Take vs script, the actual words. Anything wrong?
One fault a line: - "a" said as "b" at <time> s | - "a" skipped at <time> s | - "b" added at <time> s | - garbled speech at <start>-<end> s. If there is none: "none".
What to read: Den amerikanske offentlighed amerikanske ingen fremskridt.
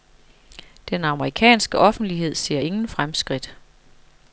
- "amerikanske" said as "ser" at 2.4 s